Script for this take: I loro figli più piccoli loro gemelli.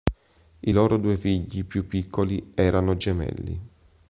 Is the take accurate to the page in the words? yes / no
no